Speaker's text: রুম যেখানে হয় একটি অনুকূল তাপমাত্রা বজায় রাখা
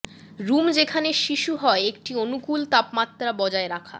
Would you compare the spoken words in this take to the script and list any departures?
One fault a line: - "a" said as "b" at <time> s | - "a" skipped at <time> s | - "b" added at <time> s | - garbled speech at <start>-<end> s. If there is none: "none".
- "শিশু" added at 1.2 s